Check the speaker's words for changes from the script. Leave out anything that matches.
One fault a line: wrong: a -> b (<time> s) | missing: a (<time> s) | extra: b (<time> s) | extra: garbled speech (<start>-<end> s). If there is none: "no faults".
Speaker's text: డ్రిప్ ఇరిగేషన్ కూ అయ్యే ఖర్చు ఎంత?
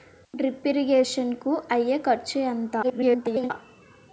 extra: garbled speech (2.8-3.5 s)